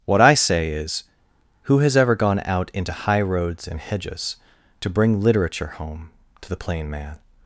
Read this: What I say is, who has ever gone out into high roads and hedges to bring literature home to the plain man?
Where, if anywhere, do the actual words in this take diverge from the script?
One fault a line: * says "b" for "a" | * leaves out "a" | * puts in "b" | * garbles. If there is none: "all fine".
all fine